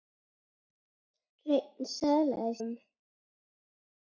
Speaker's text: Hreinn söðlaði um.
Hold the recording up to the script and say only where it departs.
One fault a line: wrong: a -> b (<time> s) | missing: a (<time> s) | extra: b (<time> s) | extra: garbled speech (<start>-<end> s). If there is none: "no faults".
no faults